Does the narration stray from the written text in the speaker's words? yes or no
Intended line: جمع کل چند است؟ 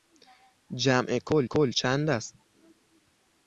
yes